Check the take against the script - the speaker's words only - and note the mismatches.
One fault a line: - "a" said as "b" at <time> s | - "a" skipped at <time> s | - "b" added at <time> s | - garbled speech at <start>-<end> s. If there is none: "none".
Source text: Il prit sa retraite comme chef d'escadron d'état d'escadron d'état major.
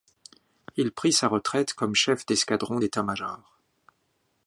- "d'escadron d'état" skipped at 3.0 s